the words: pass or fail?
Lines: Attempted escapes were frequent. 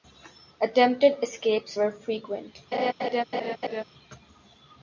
pass